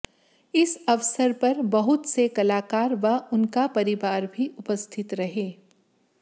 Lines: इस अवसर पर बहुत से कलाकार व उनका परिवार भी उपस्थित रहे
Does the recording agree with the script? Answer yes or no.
yes